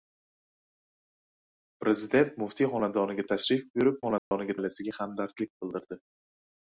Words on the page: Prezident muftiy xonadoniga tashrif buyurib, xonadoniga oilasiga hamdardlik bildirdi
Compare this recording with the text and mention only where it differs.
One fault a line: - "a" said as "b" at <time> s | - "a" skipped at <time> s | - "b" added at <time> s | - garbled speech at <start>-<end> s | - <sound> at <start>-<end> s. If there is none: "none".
- dropout at 4.2-4.3 s